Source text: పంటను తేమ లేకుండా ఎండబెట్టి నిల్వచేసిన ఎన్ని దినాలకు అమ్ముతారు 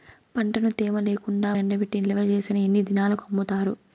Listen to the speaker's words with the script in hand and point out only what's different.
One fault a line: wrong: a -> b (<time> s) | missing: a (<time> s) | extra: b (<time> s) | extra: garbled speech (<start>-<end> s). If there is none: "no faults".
no faults